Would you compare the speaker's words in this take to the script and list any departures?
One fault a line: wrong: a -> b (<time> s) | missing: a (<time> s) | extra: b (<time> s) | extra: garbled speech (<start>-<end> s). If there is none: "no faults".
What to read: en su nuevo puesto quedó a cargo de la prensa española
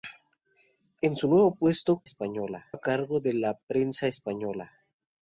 wrong: quedó -> española (2.0 s)